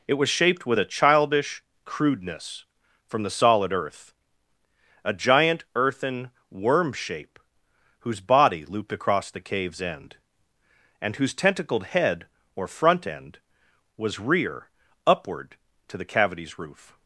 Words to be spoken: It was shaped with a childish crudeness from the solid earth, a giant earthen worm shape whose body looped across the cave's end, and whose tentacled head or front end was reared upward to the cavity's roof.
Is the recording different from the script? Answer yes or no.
yes